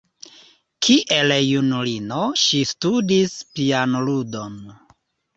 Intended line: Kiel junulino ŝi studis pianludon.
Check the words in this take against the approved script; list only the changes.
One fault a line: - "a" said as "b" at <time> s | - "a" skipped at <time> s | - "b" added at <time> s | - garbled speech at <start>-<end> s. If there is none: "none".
none